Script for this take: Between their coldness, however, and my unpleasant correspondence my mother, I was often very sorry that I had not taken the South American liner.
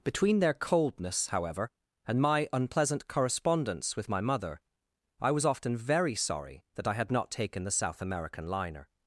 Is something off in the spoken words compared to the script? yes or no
yes